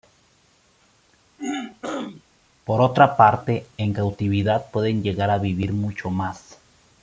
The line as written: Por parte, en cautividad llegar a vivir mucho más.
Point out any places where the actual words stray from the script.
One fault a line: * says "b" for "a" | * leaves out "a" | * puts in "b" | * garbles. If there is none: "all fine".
* puts in "otra"
* puts in "pueden"